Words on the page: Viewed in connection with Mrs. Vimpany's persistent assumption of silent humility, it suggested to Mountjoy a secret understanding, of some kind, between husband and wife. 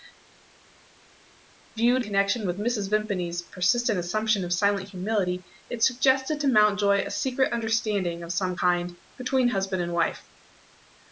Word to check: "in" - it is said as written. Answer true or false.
false